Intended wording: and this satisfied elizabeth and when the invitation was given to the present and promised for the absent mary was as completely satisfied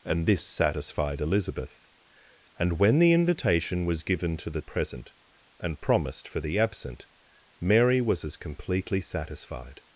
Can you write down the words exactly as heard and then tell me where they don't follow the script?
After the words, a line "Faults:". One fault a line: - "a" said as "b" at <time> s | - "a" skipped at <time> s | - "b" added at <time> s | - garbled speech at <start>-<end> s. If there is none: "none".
and this satisfied elizabeth and when the invitation was given to the present and promised for the absent mary was as completely satisfied
Faults:
none